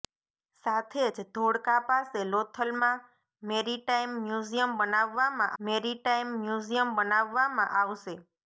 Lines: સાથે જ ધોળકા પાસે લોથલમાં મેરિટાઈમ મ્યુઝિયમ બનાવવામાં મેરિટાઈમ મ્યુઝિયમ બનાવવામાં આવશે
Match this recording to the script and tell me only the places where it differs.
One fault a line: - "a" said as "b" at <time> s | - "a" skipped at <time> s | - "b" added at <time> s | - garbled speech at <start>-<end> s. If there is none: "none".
none